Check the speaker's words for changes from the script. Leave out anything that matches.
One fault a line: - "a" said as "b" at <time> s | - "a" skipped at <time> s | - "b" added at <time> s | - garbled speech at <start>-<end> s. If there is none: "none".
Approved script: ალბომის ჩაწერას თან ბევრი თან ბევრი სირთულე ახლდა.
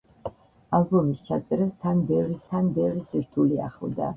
none